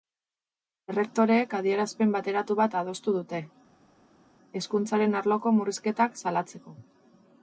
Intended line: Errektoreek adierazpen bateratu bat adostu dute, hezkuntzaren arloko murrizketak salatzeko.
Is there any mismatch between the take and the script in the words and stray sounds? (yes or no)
no